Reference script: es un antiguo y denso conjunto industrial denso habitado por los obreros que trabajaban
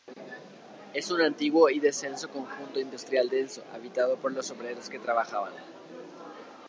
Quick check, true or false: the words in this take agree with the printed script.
true